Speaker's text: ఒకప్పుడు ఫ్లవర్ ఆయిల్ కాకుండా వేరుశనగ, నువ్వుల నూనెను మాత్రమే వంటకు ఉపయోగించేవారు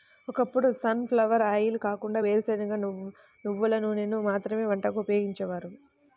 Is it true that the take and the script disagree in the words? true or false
true